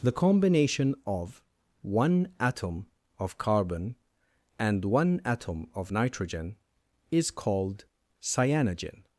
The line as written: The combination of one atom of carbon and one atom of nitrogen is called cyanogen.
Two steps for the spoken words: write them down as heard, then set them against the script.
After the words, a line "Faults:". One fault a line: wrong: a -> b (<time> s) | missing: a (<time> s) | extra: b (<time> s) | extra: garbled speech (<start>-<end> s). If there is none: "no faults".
The combination of one atom of carbon and one atom of nitrogen is called cyanogen.
Faults:
no faults